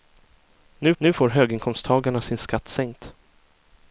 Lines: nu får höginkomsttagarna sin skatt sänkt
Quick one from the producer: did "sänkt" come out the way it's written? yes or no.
yes